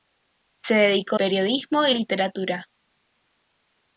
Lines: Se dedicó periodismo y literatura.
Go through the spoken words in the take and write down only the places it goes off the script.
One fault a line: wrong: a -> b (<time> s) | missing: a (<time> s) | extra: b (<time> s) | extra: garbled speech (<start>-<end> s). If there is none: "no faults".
no faults